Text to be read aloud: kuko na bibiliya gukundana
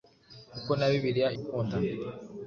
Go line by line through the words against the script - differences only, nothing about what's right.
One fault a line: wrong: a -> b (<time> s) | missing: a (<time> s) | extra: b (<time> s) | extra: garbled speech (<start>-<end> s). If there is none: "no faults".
no faults